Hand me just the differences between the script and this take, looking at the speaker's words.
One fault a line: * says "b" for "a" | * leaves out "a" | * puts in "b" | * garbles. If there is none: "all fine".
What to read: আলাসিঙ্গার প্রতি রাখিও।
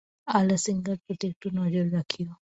* puts in "একটু নজর"